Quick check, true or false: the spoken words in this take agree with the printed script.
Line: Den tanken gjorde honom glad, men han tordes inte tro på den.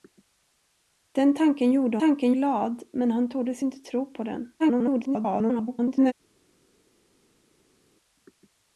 false